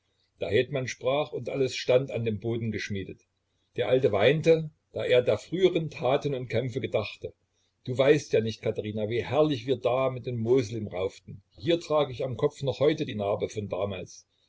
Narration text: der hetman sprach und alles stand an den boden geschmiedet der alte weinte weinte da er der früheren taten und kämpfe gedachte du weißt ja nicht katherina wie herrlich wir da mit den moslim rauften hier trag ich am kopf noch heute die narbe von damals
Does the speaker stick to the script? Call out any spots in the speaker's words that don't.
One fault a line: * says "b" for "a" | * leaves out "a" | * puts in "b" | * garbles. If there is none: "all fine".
* leaves out "weinte"